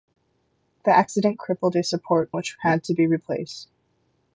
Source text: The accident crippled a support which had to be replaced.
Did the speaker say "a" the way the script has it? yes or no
yes